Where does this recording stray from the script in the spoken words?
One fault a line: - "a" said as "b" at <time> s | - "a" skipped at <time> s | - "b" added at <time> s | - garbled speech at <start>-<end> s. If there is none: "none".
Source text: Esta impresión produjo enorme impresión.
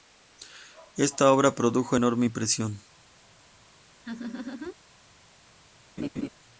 - "impresión" said as "obra" at 1.3 s